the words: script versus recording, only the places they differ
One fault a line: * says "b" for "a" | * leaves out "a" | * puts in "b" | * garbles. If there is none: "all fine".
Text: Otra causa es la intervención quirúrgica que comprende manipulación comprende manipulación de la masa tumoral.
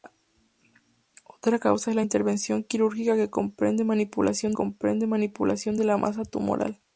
all fine